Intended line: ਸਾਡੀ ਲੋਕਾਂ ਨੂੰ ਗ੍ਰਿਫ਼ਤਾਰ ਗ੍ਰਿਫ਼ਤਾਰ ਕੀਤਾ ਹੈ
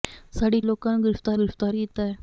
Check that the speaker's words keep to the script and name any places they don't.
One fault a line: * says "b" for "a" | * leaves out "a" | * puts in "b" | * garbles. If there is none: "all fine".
all fine